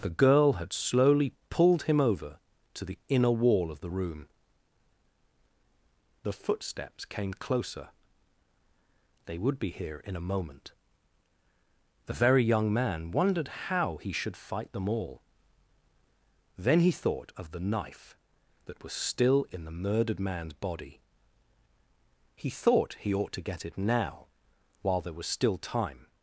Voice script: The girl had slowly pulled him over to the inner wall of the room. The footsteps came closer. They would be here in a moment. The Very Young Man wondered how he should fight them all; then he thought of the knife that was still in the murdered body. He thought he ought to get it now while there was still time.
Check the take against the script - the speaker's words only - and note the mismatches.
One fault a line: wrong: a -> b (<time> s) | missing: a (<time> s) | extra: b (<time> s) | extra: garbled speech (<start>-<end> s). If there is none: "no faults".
extra: man's (20.2 s)